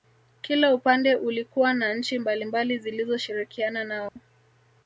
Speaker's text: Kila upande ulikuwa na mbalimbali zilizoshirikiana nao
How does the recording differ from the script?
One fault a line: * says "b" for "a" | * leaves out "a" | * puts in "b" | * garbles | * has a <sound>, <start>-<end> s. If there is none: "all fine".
* puts in "nchi"
* has a dropout, 4.1-4.2 s